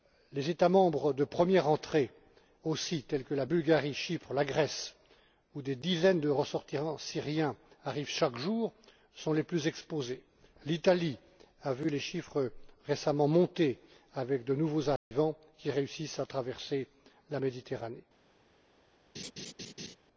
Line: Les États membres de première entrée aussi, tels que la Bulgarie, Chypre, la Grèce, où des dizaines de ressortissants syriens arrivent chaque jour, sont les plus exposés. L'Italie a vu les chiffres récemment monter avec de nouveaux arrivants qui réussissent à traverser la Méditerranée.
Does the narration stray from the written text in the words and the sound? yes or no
yes